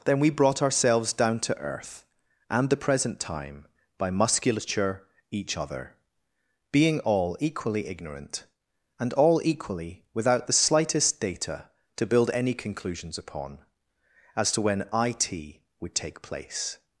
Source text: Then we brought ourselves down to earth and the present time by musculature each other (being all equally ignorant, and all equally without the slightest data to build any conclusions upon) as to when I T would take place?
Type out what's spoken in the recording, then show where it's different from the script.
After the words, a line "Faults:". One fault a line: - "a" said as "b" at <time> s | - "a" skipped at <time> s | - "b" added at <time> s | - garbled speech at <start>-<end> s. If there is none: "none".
Then we brought ourselves down to earth and the present time by musculature each other (being all equally ignorant, and all equally without the slightest data to build any conclusions upon) as to when I T would take place?
Faults:
none